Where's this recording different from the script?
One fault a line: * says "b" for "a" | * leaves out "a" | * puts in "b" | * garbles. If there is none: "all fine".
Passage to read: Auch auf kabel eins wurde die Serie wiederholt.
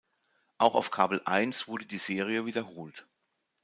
all fine